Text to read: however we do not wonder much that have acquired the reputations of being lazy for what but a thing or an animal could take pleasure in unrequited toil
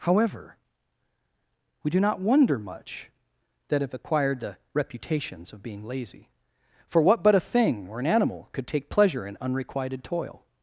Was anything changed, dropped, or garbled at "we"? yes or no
no